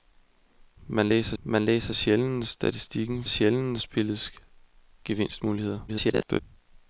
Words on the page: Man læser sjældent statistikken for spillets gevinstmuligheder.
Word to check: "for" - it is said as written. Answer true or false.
false